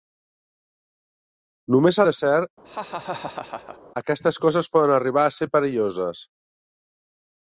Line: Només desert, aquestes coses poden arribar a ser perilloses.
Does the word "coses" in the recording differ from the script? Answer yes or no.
no